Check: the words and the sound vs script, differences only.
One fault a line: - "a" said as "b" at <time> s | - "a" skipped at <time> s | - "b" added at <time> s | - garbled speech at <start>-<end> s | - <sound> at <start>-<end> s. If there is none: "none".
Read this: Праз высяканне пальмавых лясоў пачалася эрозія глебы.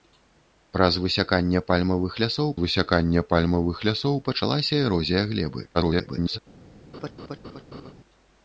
- "высяканне пальмавых лясоў" added at 2.6 s
- garbled speech at 5.7-6.4 s
- laugh at 6.9-7.9 s